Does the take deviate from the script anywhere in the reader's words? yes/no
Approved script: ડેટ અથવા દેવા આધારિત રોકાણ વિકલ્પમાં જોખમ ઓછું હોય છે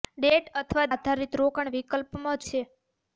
yes